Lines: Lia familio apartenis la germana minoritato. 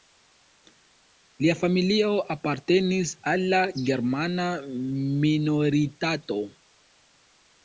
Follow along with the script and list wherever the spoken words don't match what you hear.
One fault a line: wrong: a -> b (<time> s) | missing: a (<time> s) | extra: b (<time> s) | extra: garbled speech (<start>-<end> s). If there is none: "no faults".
extra: al (3.3 s)